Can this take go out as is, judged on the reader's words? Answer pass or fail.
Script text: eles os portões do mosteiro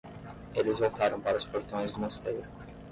fail